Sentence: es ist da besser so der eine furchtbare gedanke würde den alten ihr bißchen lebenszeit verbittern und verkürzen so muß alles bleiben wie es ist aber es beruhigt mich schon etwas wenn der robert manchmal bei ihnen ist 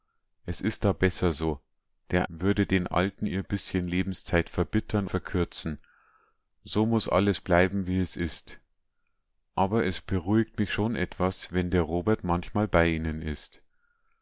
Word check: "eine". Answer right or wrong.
wrong